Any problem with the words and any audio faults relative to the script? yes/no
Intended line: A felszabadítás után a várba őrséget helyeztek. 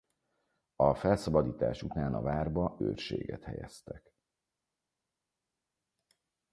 no